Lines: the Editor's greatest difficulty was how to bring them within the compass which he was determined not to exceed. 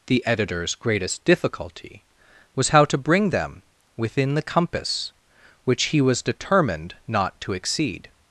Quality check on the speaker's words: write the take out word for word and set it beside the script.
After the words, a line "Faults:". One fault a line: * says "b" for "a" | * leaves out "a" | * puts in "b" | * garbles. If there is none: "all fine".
the Editor's greatest difficulty was how to bring them within the compass which he was determined not to exceed.
Faults:
all fine